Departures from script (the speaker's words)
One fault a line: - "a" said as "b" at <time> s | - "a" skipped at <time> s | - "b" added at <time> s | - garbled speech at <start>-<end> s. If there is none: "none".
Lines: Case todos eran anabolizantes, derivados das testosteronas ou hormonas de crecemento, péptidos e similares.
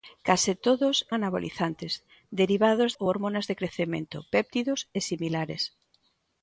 - "eran" skipped at 0.9 s
- "das testosteronas" skipped at 2.9 s